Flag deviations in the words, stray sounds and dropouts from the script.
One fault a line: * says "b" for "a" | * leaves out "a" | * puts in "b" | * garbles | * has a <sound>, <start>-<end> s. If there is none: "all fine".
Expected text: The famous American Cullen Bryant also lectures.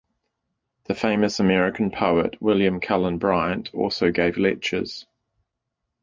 * puts in "poet William"
* puts in "gave"